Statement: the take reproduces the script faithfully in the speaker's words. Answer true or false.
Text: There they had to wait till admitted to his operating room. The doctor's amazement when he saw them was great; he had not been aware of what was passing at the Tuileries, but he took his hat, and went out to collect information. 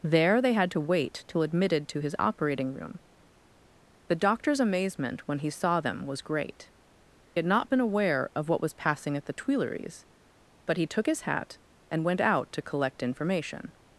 false